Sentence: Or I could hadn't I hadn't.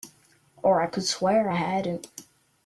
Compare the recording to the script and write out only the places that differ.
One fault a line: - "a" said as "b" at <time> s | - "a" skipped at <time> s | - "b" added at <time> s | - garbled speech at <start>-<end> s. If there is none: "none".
- "hadn't" said as "swear" at 1.0 s